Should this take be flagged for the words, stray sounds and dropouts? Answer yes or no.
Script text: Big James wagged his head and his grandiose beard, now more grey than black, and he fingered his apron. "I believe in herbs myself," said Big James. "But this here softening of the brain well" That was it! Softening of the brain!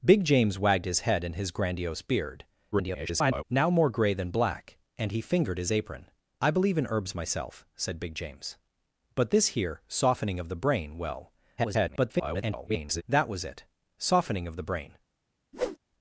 yes